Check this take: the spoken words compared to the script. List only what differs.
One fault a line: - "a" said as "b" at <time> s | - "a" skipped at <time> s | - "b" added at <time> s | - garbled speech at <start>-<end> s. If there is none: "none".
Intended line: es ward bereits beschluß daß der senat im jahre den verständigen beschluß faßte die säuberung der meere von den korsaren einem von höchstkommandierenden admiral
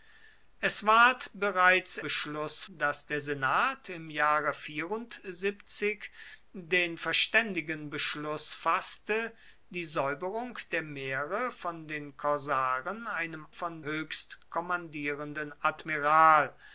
none